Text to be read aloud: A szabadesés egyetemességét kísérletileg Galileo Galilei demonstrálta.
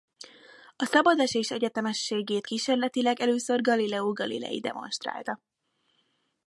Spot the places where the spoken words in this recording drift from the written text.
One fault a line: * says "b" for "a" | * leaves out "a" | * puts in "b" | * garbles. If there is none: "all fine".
* puts in "először"